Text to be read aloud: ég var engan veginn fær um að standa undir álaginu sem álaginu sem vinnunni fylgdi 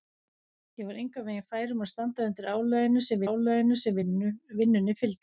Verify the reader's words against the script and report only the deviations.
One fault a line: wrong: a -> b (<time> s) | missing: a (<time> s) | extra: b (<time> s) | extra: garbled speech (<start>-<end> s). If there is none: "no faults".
no faults